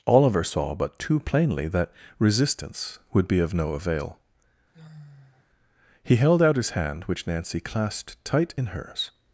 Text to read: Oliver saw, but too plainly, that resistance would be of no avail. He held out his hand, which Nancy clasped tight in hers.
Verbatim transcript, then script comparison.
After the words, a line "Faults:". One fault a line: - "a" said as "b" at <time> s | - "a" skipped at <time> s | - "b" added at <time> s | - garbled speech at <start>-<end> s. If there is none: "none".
Oliver saw, but too plainly, that resistance would be of no avail. He held out his hand, which Nancy clasped tight in hers.
Faults:
none